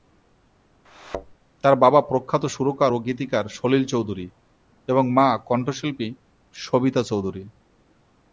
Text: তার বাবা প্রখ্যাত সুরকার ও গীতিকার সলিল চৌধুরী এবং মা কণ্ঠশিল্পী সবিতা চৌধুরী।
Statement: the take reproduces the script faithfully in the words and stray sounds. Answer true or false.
false